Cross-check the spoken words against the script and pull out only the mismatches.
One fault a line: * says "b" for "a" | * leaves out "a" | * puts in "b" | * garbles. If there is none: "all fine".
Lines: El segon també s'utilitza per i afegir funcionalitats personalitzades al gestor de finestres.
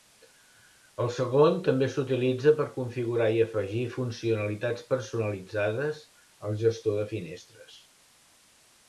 * puts in "configurar"